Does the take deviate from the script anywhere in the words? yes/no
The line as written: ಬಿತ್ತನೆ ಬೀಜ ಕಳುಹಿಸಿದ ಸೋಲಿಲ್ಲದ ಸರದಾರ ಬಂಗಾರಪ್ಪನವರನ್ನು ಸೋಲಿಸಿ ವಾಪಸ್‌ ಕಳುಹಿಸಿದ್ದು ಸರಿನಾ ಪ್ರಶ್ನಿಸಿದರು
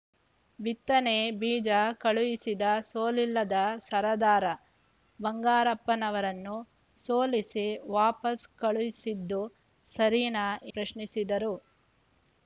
no